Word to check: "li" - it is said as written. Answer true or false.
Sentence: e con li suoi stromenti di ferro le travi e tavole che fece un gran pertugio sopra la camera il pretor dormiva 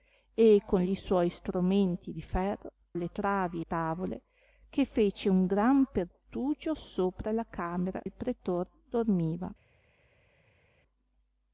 true